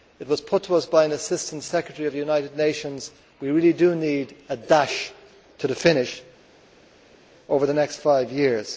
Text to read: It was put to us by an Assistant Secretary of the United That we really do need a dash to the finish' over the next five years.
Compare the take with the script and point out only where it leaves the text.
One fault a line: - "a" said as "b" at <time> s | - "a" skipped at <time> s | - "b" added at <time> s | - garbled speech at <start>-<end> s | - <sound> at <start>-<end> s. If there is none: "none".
- "Nations" added at 2.6 s